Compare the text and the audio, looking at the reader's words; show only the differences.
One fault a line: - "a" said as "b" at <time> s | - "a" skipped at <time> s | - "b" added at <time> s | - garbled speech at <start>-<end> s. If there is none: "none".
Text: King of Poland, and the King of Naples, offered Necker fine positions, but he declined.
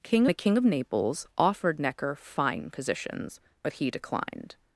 - "of Poland and" skipped at 0.2 s